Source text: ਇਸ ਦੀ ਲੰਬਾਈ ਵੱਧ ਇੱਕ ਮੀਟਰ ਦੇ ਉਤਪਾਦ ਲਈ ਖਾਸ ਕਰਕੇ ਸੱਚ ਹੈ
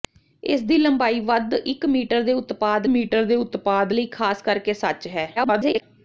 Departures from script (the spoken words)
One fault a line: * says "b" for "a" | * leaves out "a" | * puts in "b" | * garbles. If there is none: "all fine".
* puts in "ਮੀਟਰ ਦੇ ਉਤਪਾਦ"
* garbles